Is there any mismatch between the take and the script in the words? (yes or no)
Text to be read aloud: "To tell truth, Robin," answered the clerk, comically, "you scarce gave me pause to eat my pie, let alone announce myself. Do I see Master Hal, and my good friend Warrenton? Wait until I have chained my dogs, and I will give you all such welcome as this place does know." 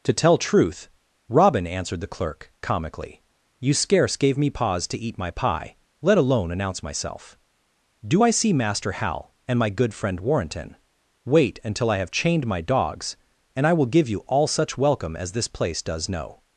no